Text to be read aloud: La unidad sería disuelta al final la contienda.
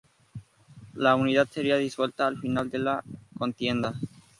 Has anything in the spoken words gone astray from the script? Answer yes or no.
yes